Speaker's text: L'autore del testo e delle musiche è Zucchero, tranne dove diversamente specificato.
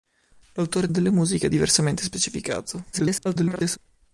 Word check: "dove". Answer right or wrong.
wrong